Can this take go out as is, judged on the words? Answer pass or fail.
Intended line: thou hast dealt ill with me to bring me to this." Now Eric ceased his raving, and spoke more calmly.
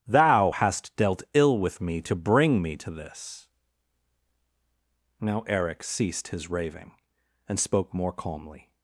pass